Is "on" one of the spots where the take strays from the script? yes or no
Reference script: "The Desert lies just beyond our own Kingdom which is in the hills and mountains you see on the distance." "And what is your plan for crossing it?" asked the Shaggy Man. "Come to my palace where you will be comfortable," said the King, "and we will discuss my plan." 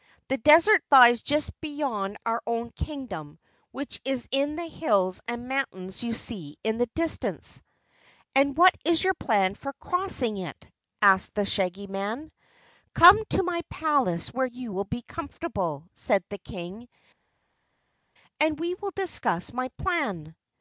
yes